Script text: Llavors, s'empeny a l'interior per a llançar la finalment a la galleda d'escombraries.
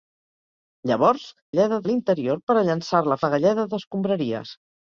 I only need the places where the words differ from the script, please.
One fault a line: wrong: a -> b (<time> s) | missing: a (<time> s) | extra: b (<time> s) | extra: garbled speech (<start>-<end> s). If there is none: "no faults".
wrong: s'empeny -> galleda (1.5 s)
missing: finalment (3.2 s)